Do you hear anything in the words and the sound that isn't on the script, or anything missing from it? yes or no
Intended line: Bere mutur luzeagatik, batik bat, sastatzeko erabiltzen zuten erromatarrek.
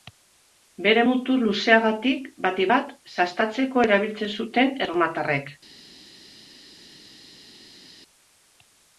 no